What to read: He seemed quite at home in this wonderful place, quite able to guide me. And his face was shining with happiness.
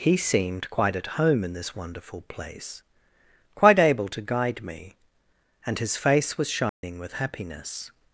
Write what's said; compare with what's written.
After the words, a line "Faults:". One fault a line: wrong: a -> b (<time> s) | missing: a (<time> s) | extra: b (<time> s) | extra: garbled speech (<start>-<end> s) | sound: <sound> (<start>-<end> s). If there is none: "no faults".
He seemed quite at home in this wonderful place, quite able to guide me. And his face was shining with happiness.
Faults:
sound: dropout (6.7-6.8 s)